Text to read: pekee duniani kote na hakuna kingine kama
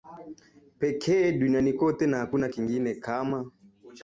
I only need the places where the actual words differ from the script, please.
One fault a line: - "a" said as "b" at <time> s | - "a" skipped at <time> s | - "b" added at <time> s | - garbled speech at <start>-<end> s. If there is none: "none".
none